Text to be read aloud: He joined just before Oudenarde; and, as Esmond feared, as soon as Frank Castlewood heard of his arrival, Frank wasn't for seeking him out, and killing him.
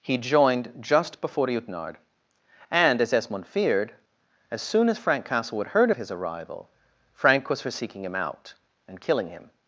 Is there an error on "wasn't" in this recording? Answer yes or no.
yes